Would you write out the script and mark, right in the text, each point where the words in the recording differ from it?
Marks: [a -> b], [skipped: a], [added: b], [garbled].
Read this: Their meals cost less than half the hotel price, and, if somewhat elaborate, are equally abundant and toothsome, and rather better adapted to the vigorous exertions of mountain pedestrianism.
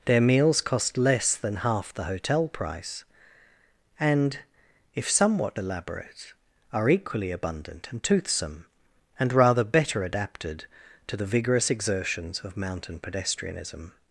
Their meals cost less than half the hotel price, and, if somewhat elaborate, are equally abundant and toothsome, and rather better adapted to the vigorous exertions of mountain pedestrianism.